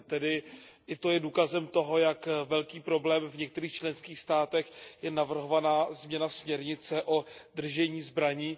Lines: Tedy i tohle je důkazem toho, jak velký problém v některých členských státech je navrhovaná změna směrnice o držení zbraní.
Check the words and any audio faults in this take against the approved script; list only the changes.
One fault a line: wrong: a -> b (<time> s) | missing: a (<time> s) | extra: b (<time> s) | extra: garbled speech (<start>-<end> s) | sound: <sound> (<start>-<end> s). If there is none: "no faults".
wrong: tohle -> to (0.9 s)